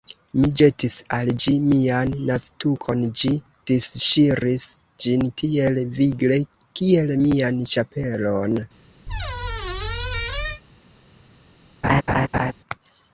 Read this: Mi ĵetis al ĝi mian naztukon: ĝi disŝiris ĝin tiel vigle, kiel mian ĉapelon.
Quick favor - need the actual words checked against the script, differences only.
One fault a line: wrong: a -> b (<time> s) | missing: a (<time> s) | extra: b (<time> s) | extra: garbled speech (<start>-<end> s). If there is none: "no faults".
no faults